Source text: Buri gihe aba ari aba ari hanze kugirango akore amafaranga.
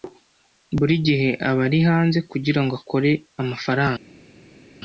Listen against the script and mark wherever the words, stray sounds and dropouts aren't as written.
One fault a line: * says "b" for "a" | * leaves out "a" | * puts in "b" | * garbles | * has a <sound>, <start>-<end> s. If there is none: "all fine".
* leaves out "aba ari"